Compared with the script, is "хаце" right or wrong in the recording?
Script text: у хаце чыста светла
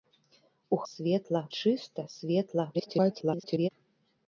wrong